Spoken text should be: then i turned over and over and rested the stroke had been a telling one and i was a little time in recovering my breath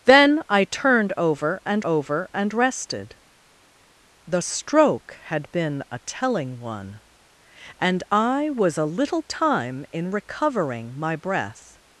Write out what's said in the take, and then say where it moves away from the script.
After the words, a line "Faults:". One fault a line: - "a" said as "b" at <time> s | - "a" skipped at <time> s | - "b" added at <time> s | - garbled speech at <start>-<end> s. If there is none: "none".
then i turned over and over and rested the stroke had been a telling one and i was a little time in recovering my breath
Faults:
none